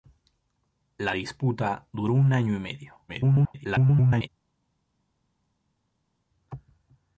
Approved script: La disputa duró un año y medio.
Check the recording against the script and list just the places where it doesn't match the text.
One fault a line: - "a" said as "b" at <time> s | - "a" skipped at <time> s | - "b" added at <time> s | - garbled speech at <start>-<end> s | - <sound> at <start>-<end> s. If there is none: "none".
- garbled speech at 3.1-4.3 s